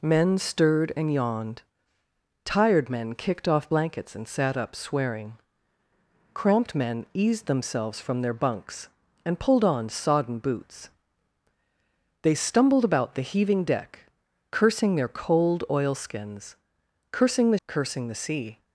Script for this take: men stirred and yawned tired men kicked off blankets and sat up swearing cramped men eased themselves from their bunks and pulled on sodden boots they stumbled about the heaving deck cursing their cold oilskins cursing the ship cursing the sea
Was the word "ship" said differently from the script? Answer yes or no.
yes